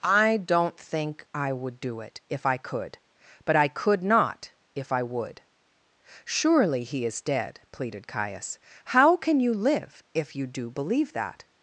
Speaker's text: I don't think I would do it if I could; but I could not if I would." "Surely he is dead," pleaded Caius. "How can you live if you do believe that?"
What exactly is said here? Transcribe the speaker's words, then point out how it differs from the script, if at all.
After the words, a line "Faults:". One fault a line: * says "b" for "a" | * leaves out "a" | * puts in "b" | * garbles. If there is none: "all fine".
I don't think I would do it if I could; but I could not if I would." "Surely he is dead," pleaded Caius. "How can you live if you do believe that?"
Faults:
all fine